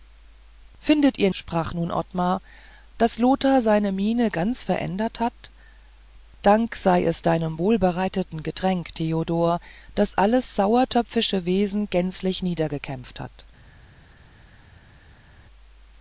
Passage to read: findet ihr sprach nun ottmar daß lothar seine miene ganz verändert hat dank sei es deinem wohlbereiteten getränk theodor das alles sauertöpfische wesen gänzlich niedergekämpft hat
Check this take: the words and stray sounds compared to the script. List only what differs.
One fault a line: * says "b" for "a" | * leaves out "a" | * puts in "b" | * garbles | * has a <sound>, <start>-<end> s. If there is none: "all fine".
all fine